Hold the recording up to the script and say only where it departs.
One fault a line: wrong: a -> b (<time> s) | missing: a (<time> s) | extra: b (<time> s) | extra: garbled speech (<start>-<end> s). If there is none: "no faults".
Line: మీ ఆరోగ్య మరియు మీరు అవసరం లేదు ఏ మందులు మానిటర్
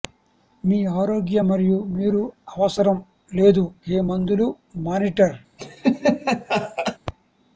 no faults